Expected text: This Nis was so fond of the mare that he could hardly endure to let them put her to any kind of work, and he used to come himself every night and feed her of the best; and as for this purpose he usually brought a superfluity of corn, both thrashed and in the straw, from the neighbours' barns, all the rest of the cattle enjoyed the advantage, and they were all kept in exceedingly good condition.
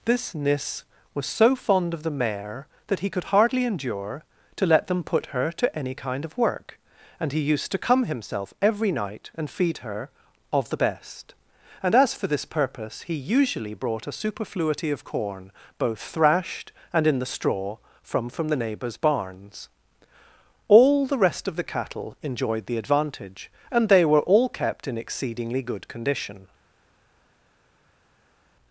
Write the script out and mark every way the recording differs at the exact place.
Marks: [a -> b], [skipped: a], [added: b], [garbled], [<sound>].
This Nis was so fond of the mare that he could hardly endure to let them put her to any kind of work, and he used to come himself every night and feed her of the best; and as for this purpose he usually brought a superfluity of corn, both thrashed and in the straw, from [added: from] the neighbours' barns, all the rest of the cattle enjoyed the advantage, and they were all kept in exceedingly good condition.